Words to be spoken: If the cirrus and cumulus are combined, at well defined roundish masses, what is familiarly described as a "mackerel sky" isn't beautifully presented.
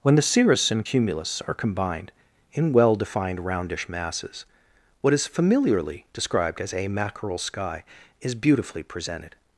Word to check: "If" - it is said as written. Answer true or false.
false